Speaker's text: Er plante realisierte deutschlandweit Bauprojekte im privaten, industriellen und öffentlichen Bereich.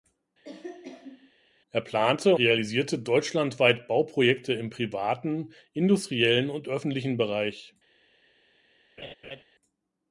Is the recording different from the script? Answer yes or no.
no